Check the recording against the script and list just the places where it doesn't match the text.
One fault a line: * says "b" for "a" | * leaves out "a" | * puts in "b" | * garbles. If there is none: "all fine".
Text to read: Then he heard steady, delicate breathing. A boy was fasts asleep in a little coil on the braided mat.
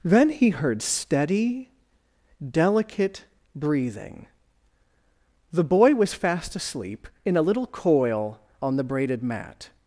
* says "The" for "A"
* says "fast" for "fasts"